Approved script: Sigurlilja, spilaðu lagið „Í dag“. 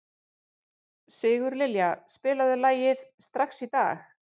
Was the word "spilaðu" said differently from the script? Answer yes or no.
no